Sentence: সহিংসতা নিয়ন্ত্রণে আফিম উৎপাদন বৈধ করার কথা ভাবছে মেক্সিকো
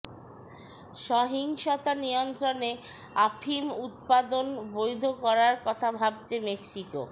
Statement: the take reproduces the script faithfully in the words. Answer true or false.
true